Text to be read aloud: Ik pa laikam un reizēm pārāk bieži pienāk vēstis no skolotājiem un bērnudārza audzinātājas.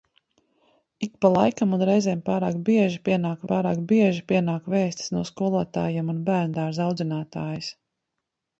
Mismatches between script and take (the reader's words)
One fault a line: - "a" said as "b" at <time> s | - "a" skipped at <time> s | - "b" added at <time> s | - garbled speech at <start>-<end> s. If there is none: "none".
- "pārāk bieži pienāk" added at 3.5 s